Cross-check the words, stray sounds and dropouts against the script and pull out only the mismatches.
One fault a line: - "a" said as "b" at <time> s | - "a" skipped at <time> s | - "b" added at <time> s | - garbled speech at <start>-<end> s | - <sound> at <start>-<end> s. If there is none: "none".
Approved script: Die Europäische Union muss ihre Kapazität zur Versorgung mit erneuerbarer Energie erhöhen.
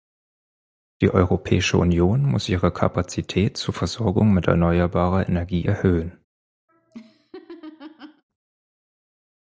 - laugh at 6.7-8.2 s